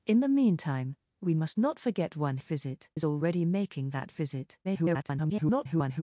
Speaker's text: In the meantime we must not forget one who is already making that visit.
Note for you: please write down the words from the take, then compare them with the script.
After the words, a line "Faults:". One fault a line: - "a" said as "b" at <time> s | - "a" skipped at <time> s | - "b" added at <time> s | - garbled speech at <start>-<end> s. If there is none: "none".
In the meantime we must not forget one visit is already making that visit. [garbled]
Faults:
- "who" said as "visit" at 2.4 s
- garbled speech at 4.6-6.0 s